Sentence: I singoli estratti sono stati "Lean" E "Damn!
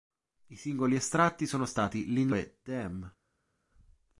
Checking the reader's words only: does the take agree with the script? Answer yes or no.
yes